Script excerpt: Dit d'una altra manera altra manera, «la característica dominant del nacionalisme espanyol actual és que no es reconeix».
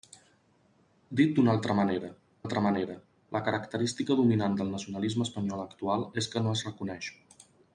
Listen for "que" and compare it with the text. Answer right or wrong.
right